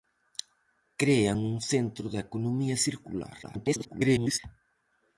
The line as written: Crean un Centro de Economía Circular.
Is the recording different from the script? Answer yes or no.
yes